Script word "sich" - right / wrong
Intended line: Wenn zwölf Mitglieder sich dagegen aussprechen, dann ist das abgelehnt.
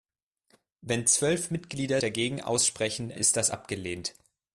wrong